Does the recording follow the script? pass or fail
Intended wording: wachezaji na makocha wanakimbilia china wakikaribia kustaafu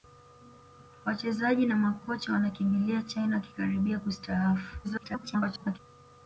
fail